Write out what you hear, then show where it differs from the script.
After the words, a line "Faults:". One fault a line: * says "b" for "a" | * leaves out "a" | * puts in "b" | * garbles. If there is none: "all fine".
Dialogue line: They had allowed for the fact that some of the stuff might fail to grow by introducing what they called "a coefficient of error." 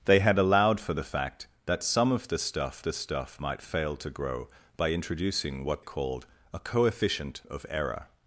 They had allowed for the fact that some of the stuff the stuff might fail to grow by introducing what called "a coefficient of error."
Faults:
* puts in "the stuff"
* leaves out "they"